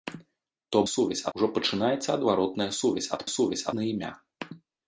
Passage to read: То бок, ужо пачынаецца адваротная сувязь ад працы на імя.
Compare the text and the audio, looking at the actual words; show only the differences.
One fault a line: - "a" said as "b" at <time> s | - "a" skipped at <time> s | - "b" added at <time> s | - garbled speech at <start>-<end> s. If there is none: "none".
- "бок" said as "сувязь" at 0.9 s
- "працы" said as "сувязь" at 3.4 s